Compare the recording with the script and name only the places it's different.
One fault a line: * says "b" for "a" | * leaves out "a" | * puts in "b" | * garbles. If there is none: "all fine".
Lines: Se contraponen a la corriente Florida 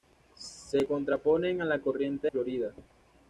all fine